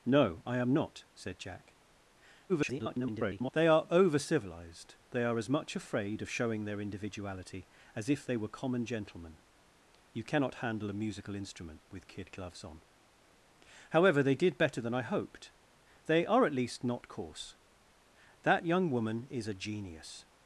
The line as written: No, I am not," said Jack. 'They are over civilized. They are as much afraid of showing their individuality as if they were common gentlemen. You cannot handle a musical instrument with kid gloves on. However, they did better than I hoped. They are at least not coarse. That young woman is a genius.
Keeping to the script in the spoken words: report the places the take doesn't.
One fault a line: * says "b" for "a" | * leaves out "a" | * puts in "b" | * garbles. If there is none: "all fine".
* garbles